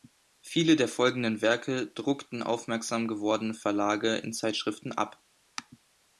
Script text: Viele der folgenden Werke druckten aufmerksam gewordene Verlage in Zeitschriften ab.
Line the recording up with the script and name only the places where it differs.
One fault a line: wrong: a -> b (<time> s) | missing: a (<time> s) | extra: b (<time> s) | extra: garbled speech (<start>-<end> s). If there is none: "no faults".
no faults